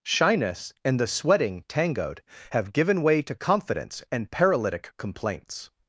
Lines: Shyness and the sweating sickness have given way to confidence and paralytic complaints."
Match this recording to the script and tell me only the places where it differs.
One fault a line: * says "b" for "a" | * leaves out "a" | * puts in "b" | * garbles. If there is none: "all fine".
* says "tangoed" for "sickness"